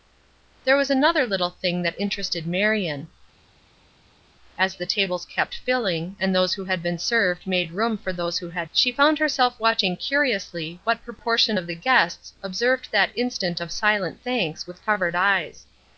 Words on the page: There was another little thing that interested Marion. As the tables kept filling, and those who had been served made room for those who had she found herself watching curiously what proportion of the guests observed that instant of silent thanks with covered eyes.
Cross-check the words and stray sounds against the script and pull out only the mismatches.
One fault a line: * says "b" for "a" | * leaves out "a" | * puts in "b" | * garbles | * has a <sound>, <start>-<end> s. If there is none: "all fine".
all fine